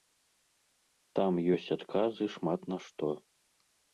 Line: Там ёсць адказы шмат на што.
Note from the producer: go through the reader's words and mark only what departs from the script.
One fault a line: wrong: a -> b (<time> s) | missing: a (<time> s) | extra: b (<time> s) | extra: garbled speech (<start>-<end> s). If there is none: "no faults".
no faults